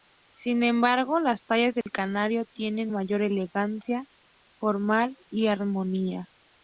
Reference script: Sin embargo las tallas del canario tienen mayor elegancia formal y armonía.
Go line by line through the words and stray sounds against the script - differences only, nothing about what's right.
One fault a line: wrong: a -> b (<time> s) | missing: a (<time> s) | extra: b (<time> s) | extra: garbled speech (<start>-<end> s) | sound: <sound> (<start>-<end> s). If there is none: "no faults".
sound: dropout (1.8-1.9 s)